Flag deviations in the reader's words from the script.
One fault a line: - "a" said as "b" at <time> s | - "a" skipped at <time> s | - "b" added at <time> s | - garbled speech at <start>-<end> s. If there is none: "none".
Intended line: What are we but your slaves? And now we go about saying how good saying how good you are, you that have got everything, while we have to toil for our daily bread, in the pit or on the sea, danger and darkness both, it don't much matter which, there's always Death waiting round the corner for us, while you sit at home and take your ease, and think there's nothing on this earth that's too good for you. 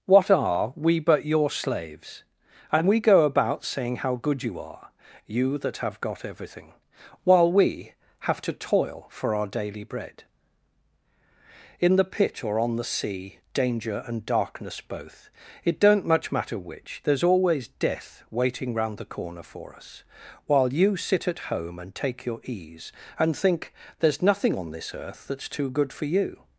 - "now" skipped at 2.9 s
- "saying how good" skipped at 4.4 s